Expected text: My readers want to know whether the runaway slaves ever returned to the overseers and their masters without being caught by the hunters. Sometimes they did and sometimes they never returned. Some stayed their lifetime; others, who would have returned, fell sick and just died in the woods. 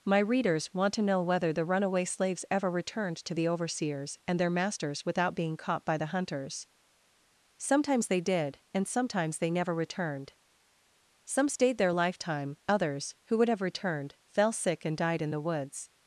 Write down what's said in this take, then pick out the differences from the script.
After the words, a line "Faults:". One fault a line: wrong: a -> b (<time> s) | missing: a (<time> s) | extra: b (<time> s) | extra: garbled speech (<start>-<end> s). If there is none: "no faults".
My readers want to know whether the runaway slaves ever returned to the overseers and their masters without being caught by the hunters. Sometimes they did and sometimes they never returned. Some stayed their lifetime; others, who would have returned, fell sick and died in the woods.
Faults:
missing: just (15.0 s)